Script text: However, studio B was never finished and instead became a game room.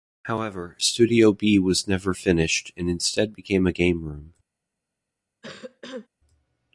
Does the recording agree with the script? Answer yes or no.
yes